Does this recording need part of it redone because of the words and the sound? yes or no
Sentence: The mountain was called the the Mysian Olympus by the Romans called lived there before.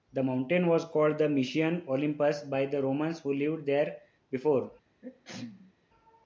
yes